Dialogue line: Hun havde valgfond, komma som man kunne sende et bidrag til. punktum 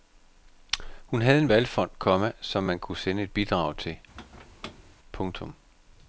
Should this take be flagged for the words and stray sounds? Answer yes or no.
yes